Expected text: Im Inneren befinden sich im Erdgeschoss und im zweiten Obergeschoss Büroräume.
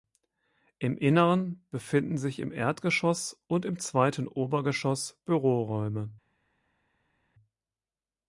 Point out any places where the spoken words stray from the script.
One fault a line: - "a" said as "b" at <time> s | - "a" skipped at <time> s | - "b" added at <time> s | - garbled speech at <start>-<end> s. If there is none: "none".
none